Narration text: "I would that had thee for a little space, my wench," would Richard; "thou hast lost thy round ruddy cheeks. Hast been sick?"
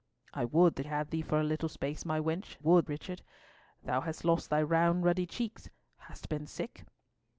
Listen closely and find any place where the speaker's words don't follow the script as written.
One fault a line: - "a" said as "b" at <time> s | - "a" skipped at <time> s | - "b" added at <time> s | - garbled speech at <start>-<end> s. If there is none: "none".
none